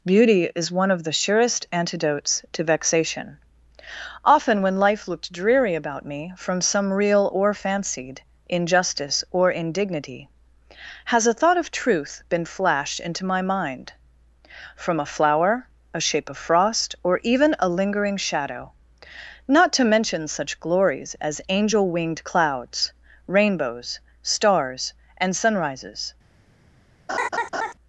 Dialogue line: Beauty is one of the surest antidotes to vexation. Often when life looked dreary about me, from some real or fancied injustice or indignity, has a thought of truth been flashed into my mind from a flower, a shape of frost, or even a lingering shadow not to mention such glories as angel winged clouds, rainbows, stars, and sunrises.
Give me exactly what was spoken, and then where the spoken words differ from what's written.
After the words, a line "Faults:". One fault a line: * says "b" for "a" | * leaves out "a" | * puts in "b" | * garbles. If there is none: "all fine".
Beauty is one of the surest antidotes to vexation. Often when life looked dreary about me, from some real or fancied injustice or indignity, has a thought of truth been flashed into my mind from a flower, a shape of frost, or even a lingering shadow not to mention such glories as angel winged clouds, rainbows, stars, and sunrises.
Faults:
all fine